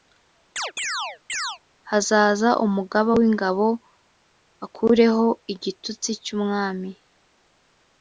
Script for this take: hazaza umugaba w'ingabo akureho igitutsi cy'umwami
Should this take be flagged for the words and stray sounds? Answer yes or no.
yes